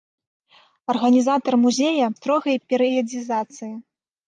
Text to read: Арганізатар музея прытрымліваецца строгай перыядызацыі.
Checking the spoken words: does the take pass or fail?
fail